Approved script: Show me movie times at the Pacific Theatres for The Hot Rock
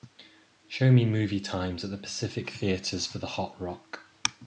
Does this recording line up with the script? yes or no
yes